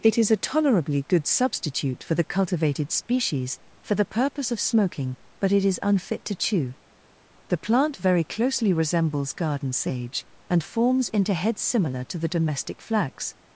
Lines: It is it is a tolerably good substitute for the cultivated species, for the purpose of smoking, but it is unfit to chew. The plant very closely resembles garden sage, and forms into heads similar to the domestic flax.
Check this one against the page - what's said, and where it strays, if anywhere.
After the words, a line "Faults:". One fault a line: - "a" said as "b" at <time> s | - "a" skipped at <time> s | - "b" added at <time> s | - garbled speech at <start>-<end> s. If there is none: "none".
It is a tolerably good substitute for the cultivated species, for the purpose of smoking, but it is unfit to chew. The plant very closely resembles garden sage, and forms into heads similar to the domestic flax.
Faults:
- "it is" skipped at 0.3 s